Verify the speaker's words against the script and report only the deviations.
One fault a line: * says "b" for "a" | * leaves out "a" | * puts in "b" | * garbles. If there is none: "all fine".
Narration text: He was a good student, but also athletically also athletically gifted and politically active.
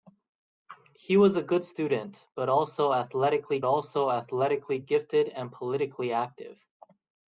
all fine